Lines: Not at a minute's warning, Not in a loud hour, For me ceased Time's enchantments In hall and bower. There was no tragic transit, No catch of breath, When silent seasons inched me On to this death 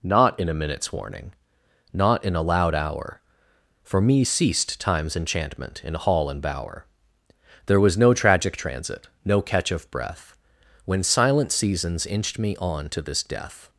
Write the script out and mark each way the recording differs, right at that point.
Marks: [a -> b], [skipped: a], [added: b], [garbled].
Not [at -> in] a minute's warning, Not in a loud hour, For me ceased Time's [enchantments -> enchantment] In hall and bower. There was no tragic transit, No catch of breath, When silent seasons inched me On to this death